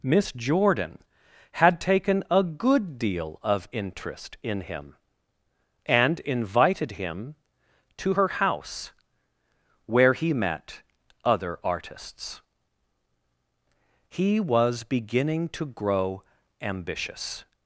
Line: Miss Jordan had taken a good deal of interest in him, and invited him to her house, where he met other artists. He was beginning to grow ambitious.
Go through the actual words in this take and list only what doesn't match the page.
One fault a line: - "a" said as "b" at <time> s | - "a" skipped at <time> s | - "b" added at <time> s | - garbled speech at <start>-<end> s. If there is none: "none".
none